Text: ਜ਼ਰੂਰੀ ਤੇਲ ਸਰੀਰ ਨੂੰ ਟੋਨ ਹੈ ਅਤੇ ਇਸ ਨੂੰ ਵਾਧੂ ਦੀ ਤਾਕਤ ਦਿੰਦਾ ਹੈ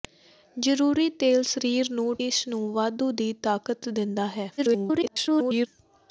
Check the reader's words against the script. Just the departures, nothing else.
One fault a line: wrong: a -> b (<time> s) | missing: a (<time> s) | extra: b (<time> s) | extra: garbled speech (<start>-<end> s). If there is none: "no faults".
missing: ਟੋਨ ਹੈ ਅਤੇ (2.1 s)
extra: garbled speech (4.6-5.7 s)